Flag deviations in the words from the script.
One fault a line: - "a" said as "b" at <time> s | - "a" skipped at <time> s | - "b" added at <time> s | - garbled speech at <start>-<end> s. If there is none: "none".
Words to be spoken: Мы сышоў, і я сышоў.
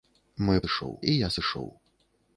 none